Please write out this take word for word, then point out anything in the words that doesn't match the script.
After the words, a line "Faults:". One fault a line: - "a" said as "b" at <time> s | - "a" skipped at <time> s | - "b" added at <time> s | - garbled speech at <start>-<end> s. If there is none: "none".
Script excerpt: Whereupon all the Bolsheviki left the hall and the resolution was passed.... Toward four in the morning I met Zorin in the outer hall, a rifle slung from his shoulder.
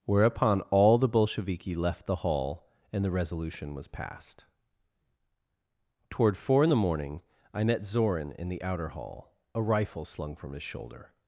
Whereupon all the Bolsheviki left the hall and the resolution was passed.... Toward four in the morning I met Zorin in the outer hall, a rifle slung from his shoulder.
Faults:
none